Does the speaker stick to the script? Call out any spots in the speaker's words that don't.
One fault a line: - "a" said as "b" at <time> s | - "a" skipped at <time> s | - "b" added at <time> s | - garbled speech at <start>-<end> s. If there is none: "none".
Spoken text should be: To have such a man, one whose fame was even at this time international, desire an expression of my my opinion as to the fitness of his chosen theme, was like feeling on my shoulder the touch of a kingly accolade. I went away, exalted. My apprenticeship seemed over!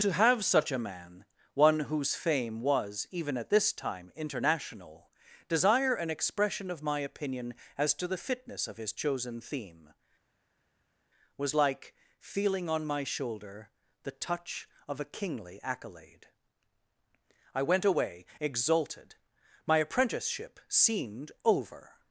- "my" skipped at 7.0 s